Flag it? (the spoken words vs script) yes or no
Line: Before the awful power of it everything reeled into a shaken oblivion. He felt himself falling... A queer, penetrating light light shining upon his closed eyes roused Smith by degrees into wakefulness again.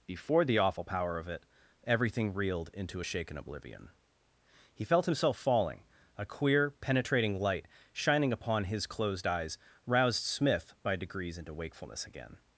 yes